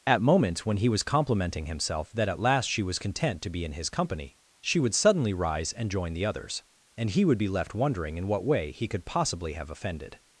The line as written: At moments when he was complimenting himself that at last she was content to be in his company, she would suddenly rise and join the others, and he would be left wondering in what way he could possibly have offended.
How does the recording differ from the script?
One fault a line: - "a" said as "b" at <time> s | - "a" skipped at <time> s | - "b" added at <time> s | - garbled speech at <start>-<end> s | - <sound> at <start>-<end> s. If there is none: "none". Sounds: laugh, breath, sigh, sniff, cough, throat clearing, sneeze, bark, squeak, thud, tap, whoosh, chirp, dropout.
none